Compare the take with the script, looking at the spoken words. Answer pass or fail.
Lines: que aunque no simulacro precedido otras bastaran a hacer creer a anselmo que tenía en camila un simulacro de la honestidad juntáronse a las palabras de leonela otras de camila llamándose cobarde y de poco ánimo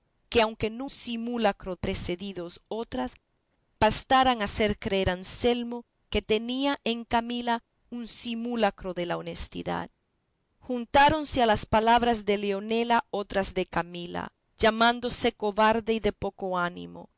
pass